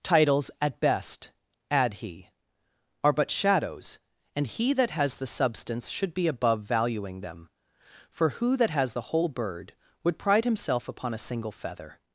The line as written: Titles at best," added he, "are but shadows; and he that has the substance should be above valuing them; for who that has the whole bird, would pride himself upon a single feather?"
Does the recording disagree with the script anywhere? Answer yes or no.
yes